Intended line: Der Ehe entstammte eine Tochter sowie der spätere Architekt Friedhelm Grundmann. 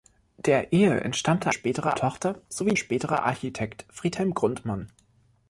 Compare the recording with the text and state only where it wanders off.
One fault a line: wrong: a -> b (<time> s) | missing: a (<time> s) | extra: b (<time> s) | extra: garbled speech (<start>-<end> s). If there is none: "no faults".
wrong: eine -> spätere (1.5 s)
missing: der (2.7 s)